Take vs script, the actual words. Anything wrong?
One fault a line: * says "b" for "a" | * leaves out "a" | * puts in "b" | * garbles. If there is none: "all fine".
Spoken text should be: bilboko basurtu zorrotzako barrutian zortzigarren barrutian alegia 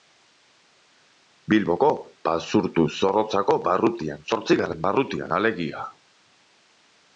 all fine